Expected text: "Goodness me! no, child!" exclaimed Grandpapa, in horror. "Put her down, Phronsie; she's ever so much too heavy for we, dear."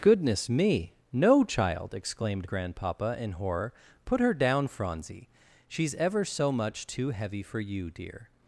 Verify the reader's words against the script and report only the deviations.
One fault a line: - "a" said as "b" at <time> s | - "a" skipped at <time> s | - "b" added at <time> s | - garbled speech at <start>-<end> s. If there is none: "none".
- "we" said as "you" at 7.6 s